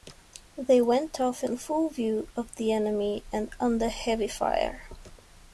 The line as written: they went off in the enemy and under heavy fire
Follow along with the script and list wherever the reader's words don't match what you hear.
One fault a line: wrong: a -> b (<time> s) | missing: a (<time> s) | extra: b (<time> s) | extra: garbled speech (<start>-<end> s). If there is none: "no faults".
extra: full view of (1.6 s)